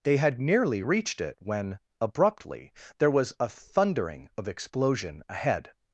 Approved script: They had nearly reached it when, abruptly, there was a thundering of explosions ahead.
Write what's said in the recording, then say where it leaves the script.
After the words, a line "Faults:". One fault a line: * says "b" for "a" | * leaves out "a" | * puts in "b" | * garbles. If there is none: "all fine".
They had nearly reached it when, abruptly, there was a thundering of explosion ahead.
Faults:
* says "explosion" for "explosions"